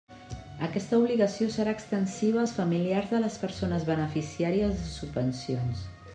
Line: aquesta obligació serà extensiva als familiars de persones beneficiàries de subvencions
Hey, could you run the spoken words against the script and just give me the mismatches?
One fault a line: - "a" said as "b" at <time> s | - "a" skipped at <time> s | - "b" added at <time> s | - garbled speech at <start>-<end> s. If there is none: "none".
- "les" added at 3.3 s